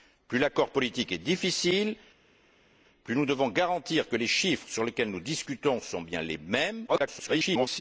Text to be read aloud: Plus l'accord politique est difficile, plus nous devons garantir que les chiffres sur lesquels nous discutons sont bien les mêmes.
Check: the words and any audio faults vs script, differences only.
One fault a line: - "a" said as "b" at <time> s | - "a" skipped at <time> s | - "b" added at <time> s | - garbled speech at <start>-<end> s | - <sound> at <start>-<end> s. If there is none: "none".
- garbled speech at 6.9-7.8 s